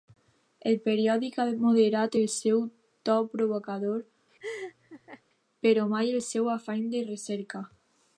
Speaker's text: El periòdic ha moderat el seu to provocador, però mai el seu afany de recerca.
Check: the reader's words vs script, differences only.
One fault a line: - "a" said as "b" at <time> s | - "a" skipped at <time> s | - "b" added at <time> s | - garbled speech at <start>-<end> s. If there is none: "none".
none